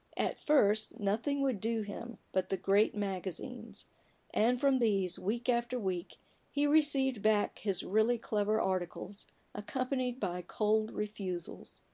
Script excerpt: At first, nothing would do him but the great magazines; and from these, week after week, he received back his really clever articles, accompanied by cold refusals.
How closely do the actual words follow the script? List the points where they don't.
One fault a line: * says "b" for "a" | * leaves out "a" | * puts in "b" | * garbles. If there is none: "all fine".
all fine